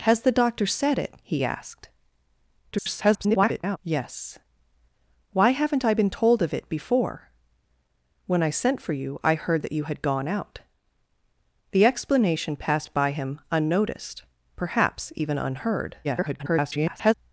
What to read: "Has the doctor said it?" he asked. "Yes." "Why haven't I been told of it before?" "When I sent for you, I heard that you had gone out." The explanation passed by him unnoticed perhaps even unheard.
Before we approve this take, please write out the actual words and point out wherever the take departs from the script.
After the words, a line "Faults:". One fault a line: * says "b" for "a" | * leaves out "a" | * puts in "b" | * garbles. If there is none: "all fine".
"Has the doctor said it?" he asked. [garbled] "Yes." "Why haven't I been told of it before?" "When I sent for you, I heard that you had gone out." The explanation passed by him unnoticed perhaps even unheard. [garbled]
Faults:
* garbles
* garbles